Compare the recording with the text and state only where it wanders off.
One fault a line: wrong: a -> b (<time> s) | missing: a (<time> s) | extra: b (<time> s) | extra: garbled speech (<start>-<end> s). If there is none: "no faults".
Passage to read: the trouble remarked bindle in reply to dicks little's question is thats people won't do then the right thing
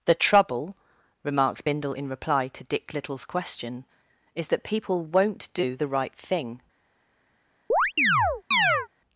wrong: dicks -> dick (2.7 s)
wrong: thats -> that (4.5 s)
missing: then (5.8 s)